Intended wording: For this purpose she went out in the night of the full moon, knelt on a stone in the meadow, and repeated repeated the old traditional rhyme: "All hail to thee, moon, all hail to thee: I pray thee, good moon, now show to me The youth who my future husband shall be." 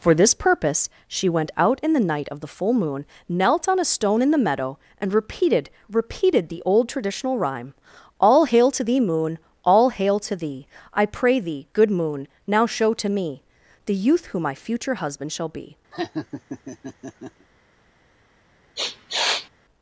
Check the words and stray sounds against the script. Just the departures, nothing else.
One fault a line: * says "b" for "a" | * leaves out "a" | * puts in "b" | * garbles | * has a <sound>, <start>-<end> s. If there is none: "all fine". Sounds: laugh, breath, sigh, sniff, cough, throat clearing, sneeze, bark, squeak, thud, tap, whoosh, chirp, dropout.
* has a laugh, 15.9-17.5 s
* has a sniff, 18.8-19.5 s